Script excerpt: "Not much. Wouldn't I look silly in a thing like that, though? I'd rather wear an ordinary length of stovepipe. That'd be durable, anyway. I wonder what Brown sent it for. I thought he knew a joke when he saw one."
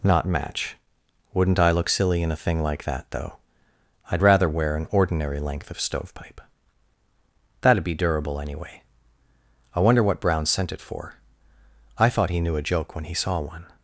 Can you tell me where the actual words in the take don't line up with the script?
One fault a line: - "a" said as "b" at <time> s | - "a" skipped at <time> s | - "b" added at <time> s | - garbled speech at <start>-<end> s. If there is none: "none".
- "much" said as "match" at 0.2 s